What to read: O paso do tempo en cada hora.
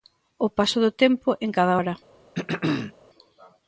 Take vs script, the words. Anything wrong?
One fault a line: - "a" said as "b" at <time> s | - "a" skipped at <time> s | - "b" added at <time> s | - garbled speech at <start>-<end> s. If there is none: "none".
none